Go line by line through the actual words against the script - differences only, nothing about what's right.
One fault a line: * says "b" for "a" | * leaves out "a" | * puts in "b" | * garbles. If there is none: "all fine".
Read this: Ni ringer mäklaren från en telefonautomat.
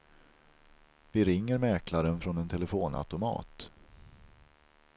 * says "Vi" for "Ni"